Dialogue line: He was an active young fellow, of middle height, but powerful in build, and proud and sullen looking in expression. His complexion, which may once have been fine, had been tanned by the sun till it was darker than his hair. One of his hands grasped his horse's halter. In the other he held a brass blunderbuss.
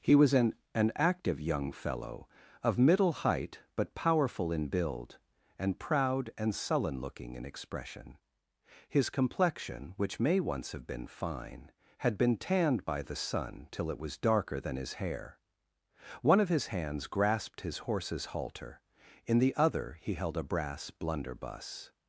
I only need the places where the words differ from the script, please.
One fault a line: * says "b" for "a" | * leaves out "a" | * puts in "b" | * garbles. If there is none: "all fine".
* puts in "an"